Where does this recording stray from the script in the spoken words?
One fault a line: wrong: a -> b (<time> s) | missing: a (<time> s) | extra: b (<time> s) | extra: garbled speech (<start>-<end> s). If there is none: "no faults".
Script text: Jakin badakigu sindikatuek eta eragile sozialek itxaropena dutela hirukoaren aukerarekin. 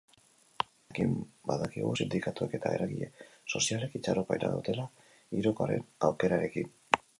no faults